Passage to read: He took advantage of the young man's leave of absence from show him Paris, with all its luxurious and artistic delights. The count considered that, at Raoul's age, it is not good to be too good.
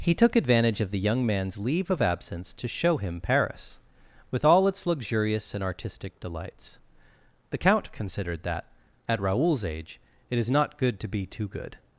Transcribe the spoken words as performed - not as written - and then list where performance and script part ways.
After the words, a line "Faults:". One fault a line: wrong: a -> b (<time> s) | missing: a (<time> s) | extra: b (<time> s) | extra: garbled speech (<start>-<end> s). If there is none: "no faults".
He took advantage of the young man's leave of absence to show him Paris, with all its luxurious and artistic delights. The count considered that, at Raoul's age, it is not good to be too good.
Faults:
wrong: from -> to (2.5 s)